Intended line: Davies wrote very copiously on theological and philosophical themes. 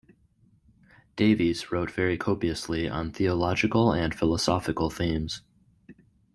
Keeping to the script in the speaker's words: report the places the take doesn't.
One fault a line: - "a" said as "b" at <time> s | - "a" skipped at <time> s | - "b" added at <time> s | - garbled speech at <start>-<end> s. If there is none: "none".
none